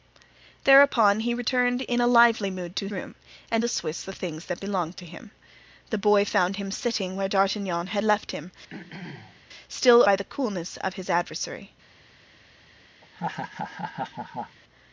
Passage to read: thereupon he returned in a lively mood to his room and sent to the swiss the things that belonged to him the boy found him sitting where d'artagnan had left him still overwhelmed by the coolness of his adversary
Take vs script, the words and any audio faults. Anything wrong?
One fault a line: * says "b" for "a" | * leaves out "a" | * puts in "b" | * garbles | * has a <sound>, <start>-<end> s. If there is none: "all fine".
* leaves out "his"
* leaves out "sent to"
* has a throat clearing, 8.7-9.4 s
* leaves out "overwhelmed"
* has a laugh, 13.0-14.6 s